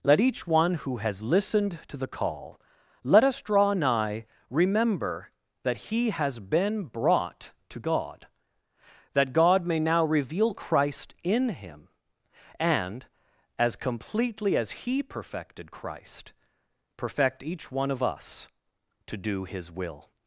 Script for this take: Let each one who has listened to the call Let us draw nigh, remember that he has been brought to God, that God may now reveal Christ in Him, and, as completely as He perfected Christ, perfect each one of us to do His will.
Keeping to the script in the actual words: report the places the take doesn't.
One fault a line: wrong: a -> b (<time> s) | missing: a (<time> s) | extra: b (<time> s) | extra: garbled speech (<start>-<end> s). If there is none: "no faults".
no faults